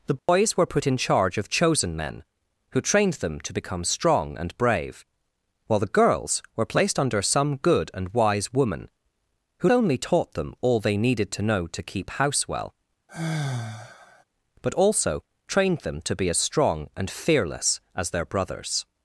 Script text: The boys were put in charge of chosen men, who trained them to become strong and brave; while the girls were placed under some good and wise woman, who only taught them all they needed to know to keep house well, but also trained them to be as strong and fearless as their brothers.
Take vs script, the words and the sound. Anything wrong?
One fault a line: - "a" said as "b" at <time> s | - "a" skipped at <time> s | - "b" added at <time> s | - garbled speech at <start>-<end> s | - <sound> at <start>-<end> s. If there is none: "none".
- dropout at 0.2-0.3 s
- sigh at 13.1-14.2 s